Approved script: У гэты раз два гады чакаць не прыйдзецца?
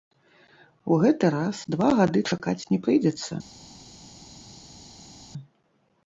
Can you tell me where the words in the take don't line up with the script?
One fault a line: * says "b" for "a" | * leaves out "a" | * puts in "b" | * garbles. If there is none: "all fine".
all fine